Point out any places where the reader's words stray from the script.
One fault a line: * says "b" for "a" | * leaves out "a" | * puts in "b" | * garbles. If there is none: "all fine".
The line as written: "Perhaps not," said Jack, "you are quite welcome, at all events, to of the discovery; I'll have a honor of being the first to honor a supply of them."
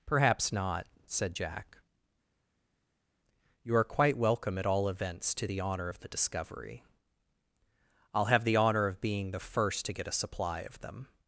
* puts in "the honor"
* says "the" for "a"
* says "get" for "honor"